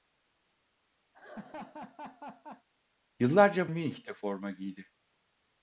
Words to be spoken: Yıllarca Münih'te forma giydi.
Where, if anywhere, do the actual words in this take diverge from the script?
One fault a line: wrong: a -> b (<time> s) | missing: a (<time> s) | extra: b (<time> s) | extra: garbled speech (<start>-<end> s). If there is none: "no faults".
no faults